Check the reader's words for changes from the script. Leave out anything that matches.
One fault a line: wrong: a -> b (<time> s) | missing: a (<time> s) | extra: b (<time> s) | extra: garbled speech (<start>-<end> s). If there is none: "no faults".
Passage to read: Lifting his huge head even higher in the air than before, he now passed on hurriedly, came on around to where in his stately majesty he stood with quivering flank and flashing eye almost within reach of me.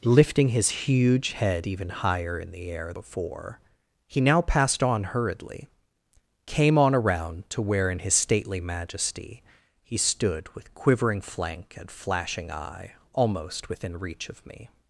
missing: than (2.9 s)